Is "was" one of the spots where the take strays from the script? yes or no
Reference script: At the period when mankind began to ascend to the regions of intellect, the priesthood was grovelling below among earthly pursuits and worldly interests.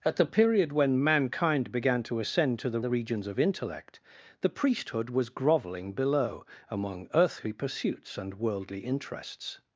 no